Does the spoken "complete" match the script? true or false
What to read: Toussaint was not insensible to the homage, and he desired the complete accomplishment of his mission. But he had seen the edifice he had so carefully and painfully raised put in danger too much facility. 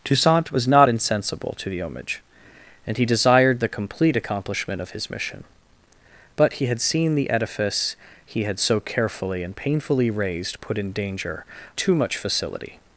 true